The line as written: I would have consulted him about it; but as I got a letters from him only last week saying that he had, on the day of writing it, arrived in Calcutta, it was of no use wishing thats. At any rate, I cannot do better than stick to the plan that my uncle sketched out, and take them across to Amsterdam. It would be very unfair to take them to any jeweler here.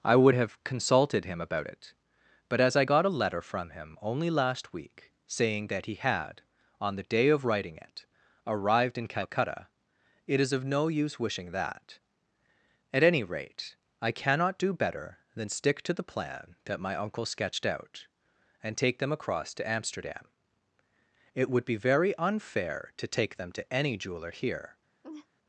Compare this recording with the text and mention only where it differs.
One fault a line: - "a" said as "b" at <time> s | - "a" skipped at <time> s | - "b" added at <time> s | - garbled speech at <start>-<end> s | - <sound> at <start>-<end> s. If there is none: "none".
- "letters" said as "letter" at 3.2 s
- "was" said as "is" at 10.4 s
- "thats" said as "that" at 11.5 s
- laugh at 25.0-25.3 s